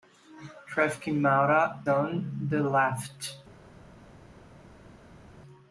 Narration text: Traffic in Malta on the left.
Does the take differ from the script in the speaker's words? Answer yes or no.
no